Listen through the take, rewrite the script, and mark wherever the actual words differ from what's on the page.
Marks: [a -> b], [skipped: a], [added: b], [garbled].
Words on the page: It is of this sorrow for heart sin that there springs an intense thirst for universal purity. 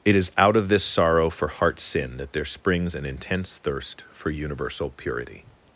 It is [added: out] of this sorrow for heart sin that there springs an intense thirst for universal purity.